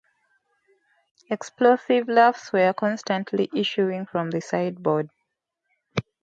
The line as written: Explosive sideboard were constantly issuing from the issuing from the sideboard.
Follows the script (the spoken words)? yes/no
no